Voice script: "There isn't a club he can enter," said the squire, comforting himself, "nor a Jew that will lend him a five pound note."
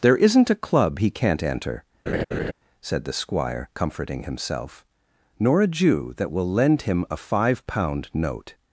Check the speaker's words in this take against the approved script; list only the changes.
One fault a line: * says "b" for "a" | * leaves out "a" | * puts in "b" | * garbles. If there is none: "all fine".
* says "can't" for "can"